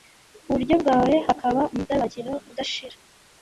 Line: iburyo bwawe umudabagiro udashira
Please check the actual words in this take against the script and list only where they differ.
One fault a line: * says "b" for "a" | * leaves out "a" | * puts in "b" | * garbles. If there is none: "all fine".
* puts in "hakaba"